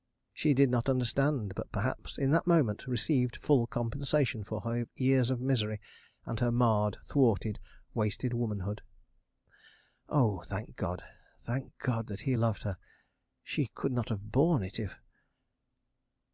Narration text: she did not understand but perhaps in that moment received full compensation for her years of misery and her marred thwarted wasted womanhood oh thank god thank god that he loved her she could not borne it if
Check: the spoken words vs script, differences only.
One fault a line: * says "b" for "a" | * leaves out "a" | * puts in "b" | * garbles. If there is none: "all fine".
* puts in "have"